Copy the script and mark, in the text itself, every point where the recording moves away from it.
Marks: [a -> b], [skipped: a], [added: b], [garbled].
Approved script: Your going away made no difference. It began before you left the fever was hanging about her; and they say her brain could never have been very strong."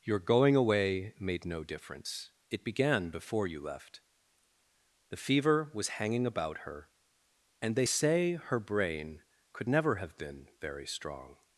Your going away made no difference. It began before you left the fever was hanging about her; and they say her brain could never have been very strong."